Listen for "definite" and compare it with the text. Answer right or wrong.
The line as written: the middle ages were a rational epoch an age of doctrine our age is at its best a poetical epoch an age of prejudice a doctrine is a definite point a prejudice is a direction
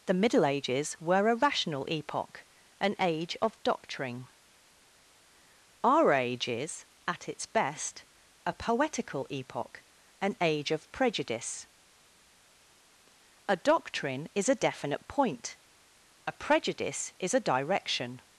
right